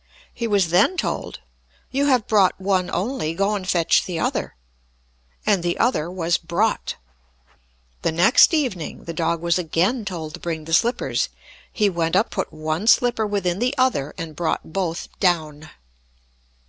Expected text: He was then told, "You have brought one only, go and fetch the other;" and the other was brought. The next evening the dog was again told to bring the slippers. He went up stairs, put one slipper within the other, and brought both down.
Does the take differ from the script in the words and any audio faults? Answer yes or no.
yes